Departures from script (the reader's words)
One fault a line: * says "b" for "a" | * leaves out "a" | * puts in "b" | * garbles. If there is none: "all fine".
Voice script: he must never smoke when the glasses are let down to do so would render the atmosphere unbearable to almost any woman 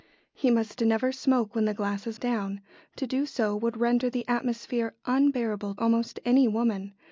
* leaves out "are let"
* leaves out "to"